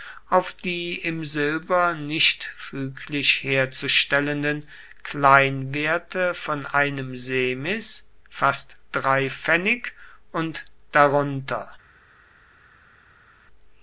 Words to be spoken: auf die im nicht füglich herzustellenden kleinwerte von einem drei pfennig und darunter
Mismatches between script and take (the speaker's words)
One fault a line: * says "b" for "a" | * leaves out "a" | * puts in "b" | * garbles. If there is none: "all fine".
* puts in "silber"
* puts in "semis fast"